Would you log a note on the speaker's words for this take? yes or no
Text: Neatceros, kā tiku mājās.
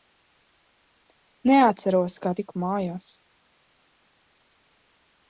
no